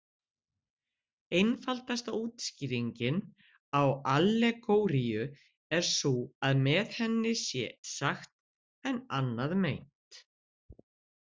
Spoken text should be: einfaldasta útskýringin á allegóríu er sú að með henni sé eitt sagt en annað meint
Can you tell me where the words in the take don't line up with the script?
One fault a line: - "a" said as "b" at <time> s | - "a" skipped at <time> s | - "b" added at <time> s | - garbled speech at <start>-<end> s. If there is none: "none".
- "eitt" skipped at 7.6 s